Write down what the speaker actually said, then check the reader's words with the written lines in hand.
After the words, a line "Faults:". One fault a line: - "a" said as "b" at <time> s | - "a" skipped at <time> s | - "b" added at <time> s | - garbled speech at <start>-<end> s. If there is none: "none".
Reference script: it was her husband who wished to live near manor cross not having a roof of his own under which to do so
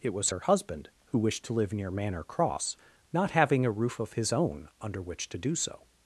it was her husband who wished to live near manor cross not having a roof of his own under which to do so
Faults:
none